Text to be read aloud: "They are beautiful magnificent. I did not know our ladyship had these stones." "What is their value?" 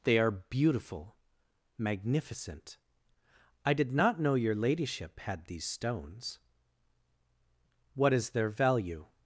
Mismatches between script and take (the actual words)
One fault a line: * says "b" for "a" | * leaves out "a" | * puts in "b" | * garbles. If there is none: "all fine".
* says "your" for "our"